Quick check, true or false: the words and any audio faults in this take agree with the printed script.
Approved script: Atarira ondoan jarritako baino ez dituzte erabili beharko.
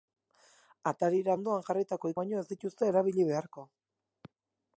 true